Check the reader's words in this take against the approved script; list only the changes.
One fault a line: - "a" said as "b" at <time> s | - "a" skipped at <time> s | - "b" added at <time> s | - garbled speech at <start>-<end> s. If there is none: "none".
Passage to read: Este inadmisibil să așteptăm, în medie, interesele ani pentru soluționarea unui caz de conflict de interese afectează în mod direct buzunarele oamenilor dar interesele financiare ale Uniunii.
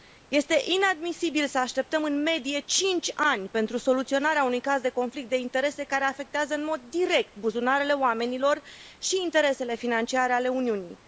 - "interesele" said as "cinci" at 2.6 s
- "care" added at 5.8 s
- "dar" said as "și" at 9.0 s